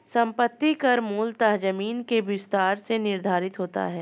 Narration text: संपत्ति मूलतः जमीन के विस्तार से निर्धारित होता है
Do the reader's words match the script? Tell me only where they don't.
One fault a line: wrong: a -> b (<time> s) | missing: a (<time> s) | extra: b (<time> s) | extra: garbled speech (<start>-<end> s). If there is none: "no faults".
extra: कर (0.7 s)